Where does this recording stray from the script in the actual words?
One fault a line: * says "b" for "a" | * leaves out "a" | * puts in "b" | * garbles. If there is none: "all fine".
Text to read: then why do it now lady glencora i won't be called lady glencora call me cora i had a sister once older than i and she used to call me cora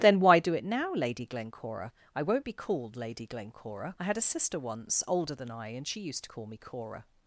* leaves out "call me cora"